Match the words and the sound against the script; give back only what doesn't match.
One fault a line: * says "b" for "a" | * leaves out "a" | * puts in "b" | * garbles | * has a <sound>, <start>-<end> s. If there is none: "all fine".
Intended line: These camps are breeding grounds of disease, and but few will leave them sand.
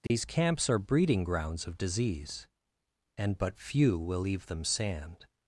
* has a dropout, 0.1-0.1 s